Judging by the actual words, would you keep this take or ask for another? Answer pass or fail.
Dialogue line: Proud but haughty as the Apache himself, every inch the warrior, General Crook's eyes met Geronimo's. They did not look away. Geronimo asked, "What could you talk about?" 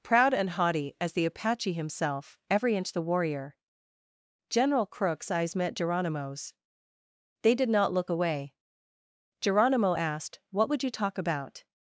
fail